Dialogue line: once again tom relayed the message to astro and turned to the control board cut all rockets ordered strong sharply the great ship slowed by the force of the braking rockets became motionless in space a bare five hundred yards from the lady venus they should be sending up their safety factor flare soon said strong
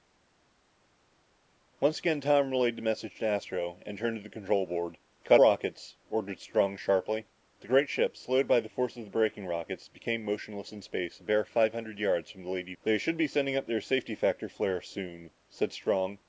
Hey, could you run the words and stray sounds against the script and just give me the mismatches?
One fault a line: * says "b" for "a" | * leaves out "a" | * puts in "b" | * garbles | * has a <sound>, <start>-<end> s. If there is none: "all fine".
* leaves out "all"
* leaves out "venus"